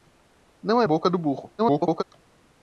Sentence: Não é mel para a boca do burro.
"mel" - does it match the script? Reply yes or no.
no